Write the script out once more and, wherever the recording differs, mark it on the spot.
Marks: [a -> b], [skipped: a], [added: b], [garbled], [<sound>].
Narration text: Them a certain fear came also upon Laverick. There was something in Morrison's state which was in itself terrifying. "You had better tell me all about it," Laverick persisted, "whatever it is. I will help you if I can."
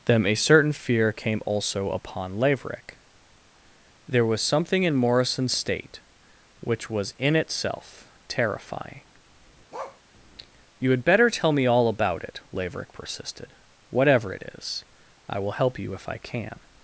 Them a certain fear came also upon Laverick. There was something in Morrison's state which was in itself terrifying. [bark] "You had better tell me all about it," Laverick persisted, "whatever it is. I will help you if I can."